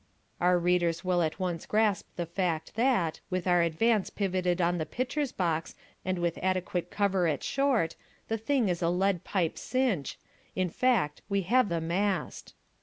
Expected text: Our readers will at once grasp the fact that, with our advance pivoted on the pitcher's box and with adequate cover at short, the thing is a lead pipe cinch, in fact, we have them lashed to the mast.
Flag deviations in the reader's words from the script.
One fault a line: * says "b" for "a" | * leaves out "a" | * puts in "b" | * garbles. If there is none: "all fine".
* leaves out "them lashed to"